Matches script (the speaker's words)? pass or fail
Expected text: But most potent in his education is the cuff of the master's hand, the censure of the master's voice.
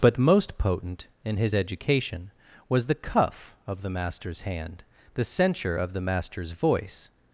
fail